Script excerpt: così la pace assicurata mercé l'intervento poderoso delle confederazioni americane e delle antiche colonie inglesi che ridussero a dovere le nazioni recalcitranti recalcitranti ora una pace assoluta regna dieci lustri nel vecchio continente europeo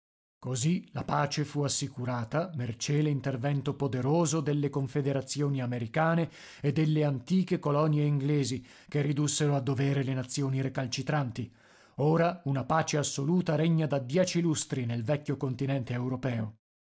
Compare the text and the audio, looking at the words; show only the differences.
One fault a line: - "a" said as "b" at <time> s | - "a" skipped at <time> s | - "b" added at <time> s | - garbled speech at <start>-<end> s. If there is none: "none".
- "fu" added at 1.4 s
- "recalcitranti" skipped at 11.5 s
- "da" added at 13.9 s